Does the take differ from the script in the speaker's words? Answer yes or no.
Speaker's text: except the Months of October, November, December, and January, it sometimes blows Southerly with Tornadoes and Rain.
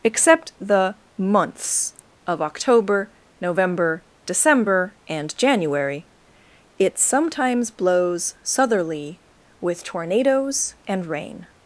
no